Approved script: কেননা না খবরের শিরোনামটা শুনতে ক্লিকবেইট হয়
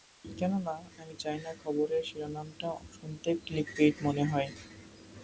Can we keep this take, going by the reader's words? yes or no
no